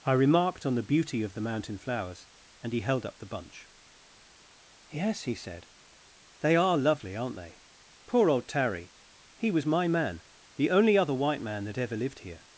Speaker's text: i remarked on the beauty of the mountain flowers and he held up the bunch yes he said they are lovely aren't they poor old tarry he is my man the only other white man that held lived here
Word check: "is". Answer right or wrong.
wrong